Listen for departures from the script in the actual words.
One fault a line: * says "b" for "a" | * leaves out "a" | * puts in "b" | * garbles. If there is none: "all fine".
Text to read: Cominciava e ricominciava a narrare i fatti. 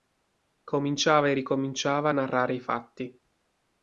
all fine